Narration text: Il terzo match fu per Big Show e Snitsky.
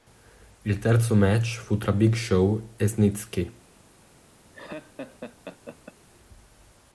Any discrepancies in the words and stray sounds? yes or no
yes